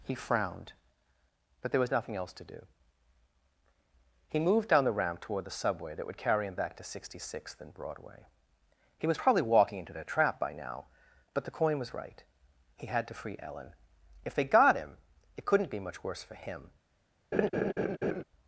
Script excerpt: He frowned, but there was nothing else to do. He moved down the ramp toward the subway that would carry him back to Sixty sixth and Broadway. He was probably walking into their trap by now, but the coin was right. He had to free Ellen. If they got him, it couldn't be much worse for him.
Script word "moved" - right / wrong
right